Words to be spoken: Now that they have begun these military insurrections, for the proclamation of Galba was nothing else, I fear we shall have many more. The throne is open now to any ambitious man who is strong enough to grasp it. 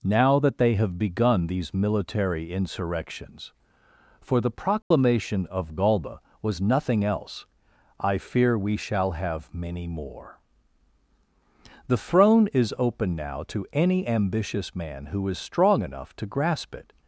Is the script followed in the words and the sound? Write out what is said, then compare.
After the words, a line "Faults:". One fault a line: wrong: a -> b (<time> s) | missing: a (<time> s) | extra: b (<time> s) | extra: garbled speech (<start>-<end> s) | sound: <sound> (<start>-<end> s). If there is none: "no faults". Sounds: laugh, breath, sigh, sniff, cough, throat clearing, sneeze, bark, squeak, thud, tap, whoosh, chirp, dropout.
Now that they have begun these military insurrections, for the proclamation of Galba was nothing else, I fear we shall have many more. The throne is open now to any ambitious man who is strong enough to grasp it.
Faults:
sound: dropout (4.8-4.9 s)